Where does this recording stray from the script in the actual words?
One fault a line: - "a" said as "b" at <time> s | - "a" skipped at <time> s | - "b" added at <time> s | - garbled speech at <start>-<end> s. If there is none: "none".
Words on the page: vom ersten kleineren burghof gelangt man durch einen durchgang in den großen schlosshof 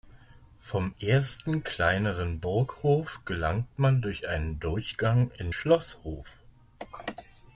- "den großen" skipped at 5.5 s